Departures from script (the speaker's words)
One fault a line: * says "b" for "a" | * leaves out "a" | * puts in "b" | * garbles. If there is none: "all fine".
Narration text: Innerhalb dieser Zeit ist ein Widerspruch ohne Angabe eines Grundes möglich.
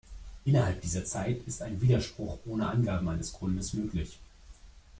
all fine